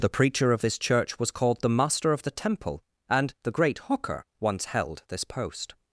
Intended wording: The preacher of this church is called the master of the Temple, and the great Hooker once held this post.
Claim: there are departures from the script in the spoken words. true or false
true